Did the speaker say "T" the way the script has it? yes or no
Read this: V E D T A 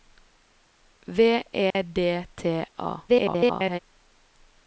yes